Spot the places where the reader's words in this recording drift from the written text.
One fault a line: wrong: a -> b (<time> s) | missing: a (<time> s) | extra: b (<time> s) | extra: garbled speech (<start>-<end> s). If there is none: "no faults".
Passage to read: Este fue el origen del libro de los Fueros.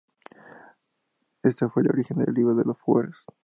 no faults